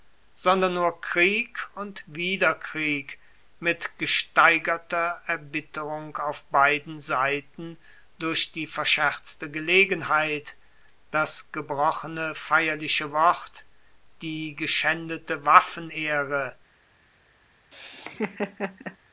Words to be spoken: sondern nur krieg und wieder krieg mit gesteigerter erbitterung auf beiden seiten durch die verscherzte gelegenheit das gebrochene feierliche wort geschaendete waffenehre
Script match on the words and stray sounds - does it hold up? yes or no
no